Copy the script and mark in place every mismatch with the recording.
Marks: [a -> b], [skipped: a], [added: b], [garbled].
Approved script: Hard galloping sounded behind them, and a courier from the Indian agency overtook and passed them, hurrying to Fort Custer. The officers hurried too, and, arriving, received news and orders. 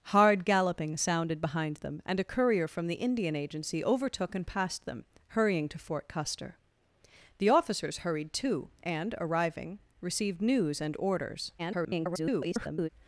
Hard galloping sounded behind them, and a courier from the Indian agency overtook and passed them, hurrying to Fort Custer. The officers hurried too, and, arriving, received news and orders. [garbled]